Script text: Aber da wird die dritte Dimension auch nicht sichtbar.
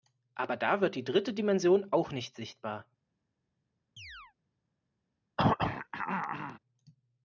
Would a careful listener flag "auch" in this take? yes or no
no